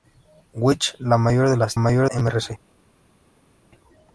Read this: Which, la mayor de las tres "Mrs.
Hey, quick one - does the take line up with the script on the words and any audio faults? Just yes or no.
no